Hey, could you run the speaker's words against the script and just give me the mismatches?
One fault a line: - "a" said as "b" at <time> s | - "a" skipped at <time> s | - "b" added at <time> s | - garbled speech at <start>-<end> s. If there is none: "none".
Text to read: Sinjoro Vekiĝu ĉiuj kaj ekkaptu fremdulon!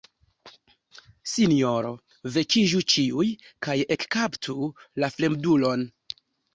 - "la" added at 5.0 s